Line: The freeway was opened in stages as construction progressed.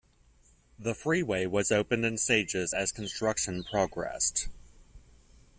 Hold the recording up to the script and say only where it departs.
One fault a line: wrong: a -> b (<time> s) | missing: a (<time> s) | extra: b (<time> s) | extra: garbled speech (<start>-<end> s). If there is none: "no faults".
no faults